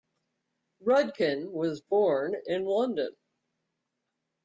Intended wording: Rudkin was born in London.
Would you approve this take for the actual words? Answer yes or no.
yes